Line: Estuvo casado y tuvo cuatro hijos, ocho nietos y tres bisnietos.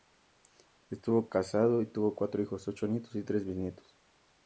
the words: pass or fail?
pass